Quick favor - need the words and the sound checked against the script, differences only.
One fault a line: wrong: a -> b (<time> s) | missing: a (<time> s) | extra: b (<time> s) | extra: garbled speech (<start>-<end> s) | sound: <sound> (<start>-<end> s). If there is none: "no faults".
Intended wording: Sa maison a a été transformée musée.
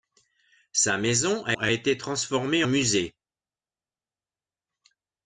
no faults